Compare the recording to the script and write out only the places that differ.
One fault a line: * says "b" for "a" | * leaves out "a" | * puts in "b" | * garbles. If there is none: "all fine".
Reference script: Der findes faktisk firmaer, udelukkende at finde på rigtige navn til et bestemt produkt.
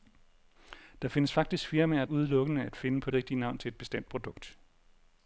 all fine